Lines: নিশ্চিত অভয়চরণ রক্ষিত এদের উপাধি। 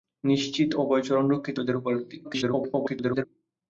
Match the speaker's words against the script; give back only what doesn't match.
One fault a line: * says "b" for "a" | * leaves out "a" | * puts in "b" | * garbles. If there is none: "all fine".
* garbles